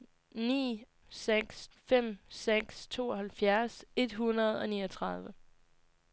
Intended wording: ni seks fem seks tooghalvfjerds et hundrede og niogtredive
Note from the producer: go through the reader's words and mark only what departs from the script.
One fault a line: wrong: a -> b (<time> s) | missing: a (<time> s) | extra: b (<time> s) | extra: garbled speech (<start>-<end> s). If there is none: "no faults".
no faults